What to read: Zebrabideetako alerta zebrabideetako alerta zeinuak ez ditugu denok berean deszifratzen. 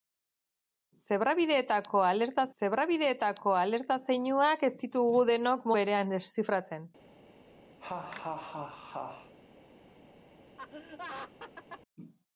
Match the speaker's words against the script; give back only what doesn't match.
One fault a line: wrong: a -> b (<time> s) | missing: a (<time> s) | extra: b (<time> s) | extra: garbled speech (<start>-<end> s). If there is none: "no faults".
no faults